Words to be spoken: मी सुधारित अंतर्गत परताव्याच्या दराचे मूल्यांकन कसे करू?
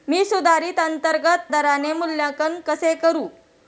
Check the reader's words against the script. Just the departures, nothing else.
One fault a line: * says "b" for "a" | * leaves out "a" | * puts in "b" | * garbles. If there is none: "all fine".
* leaves out "परताव्याच्या"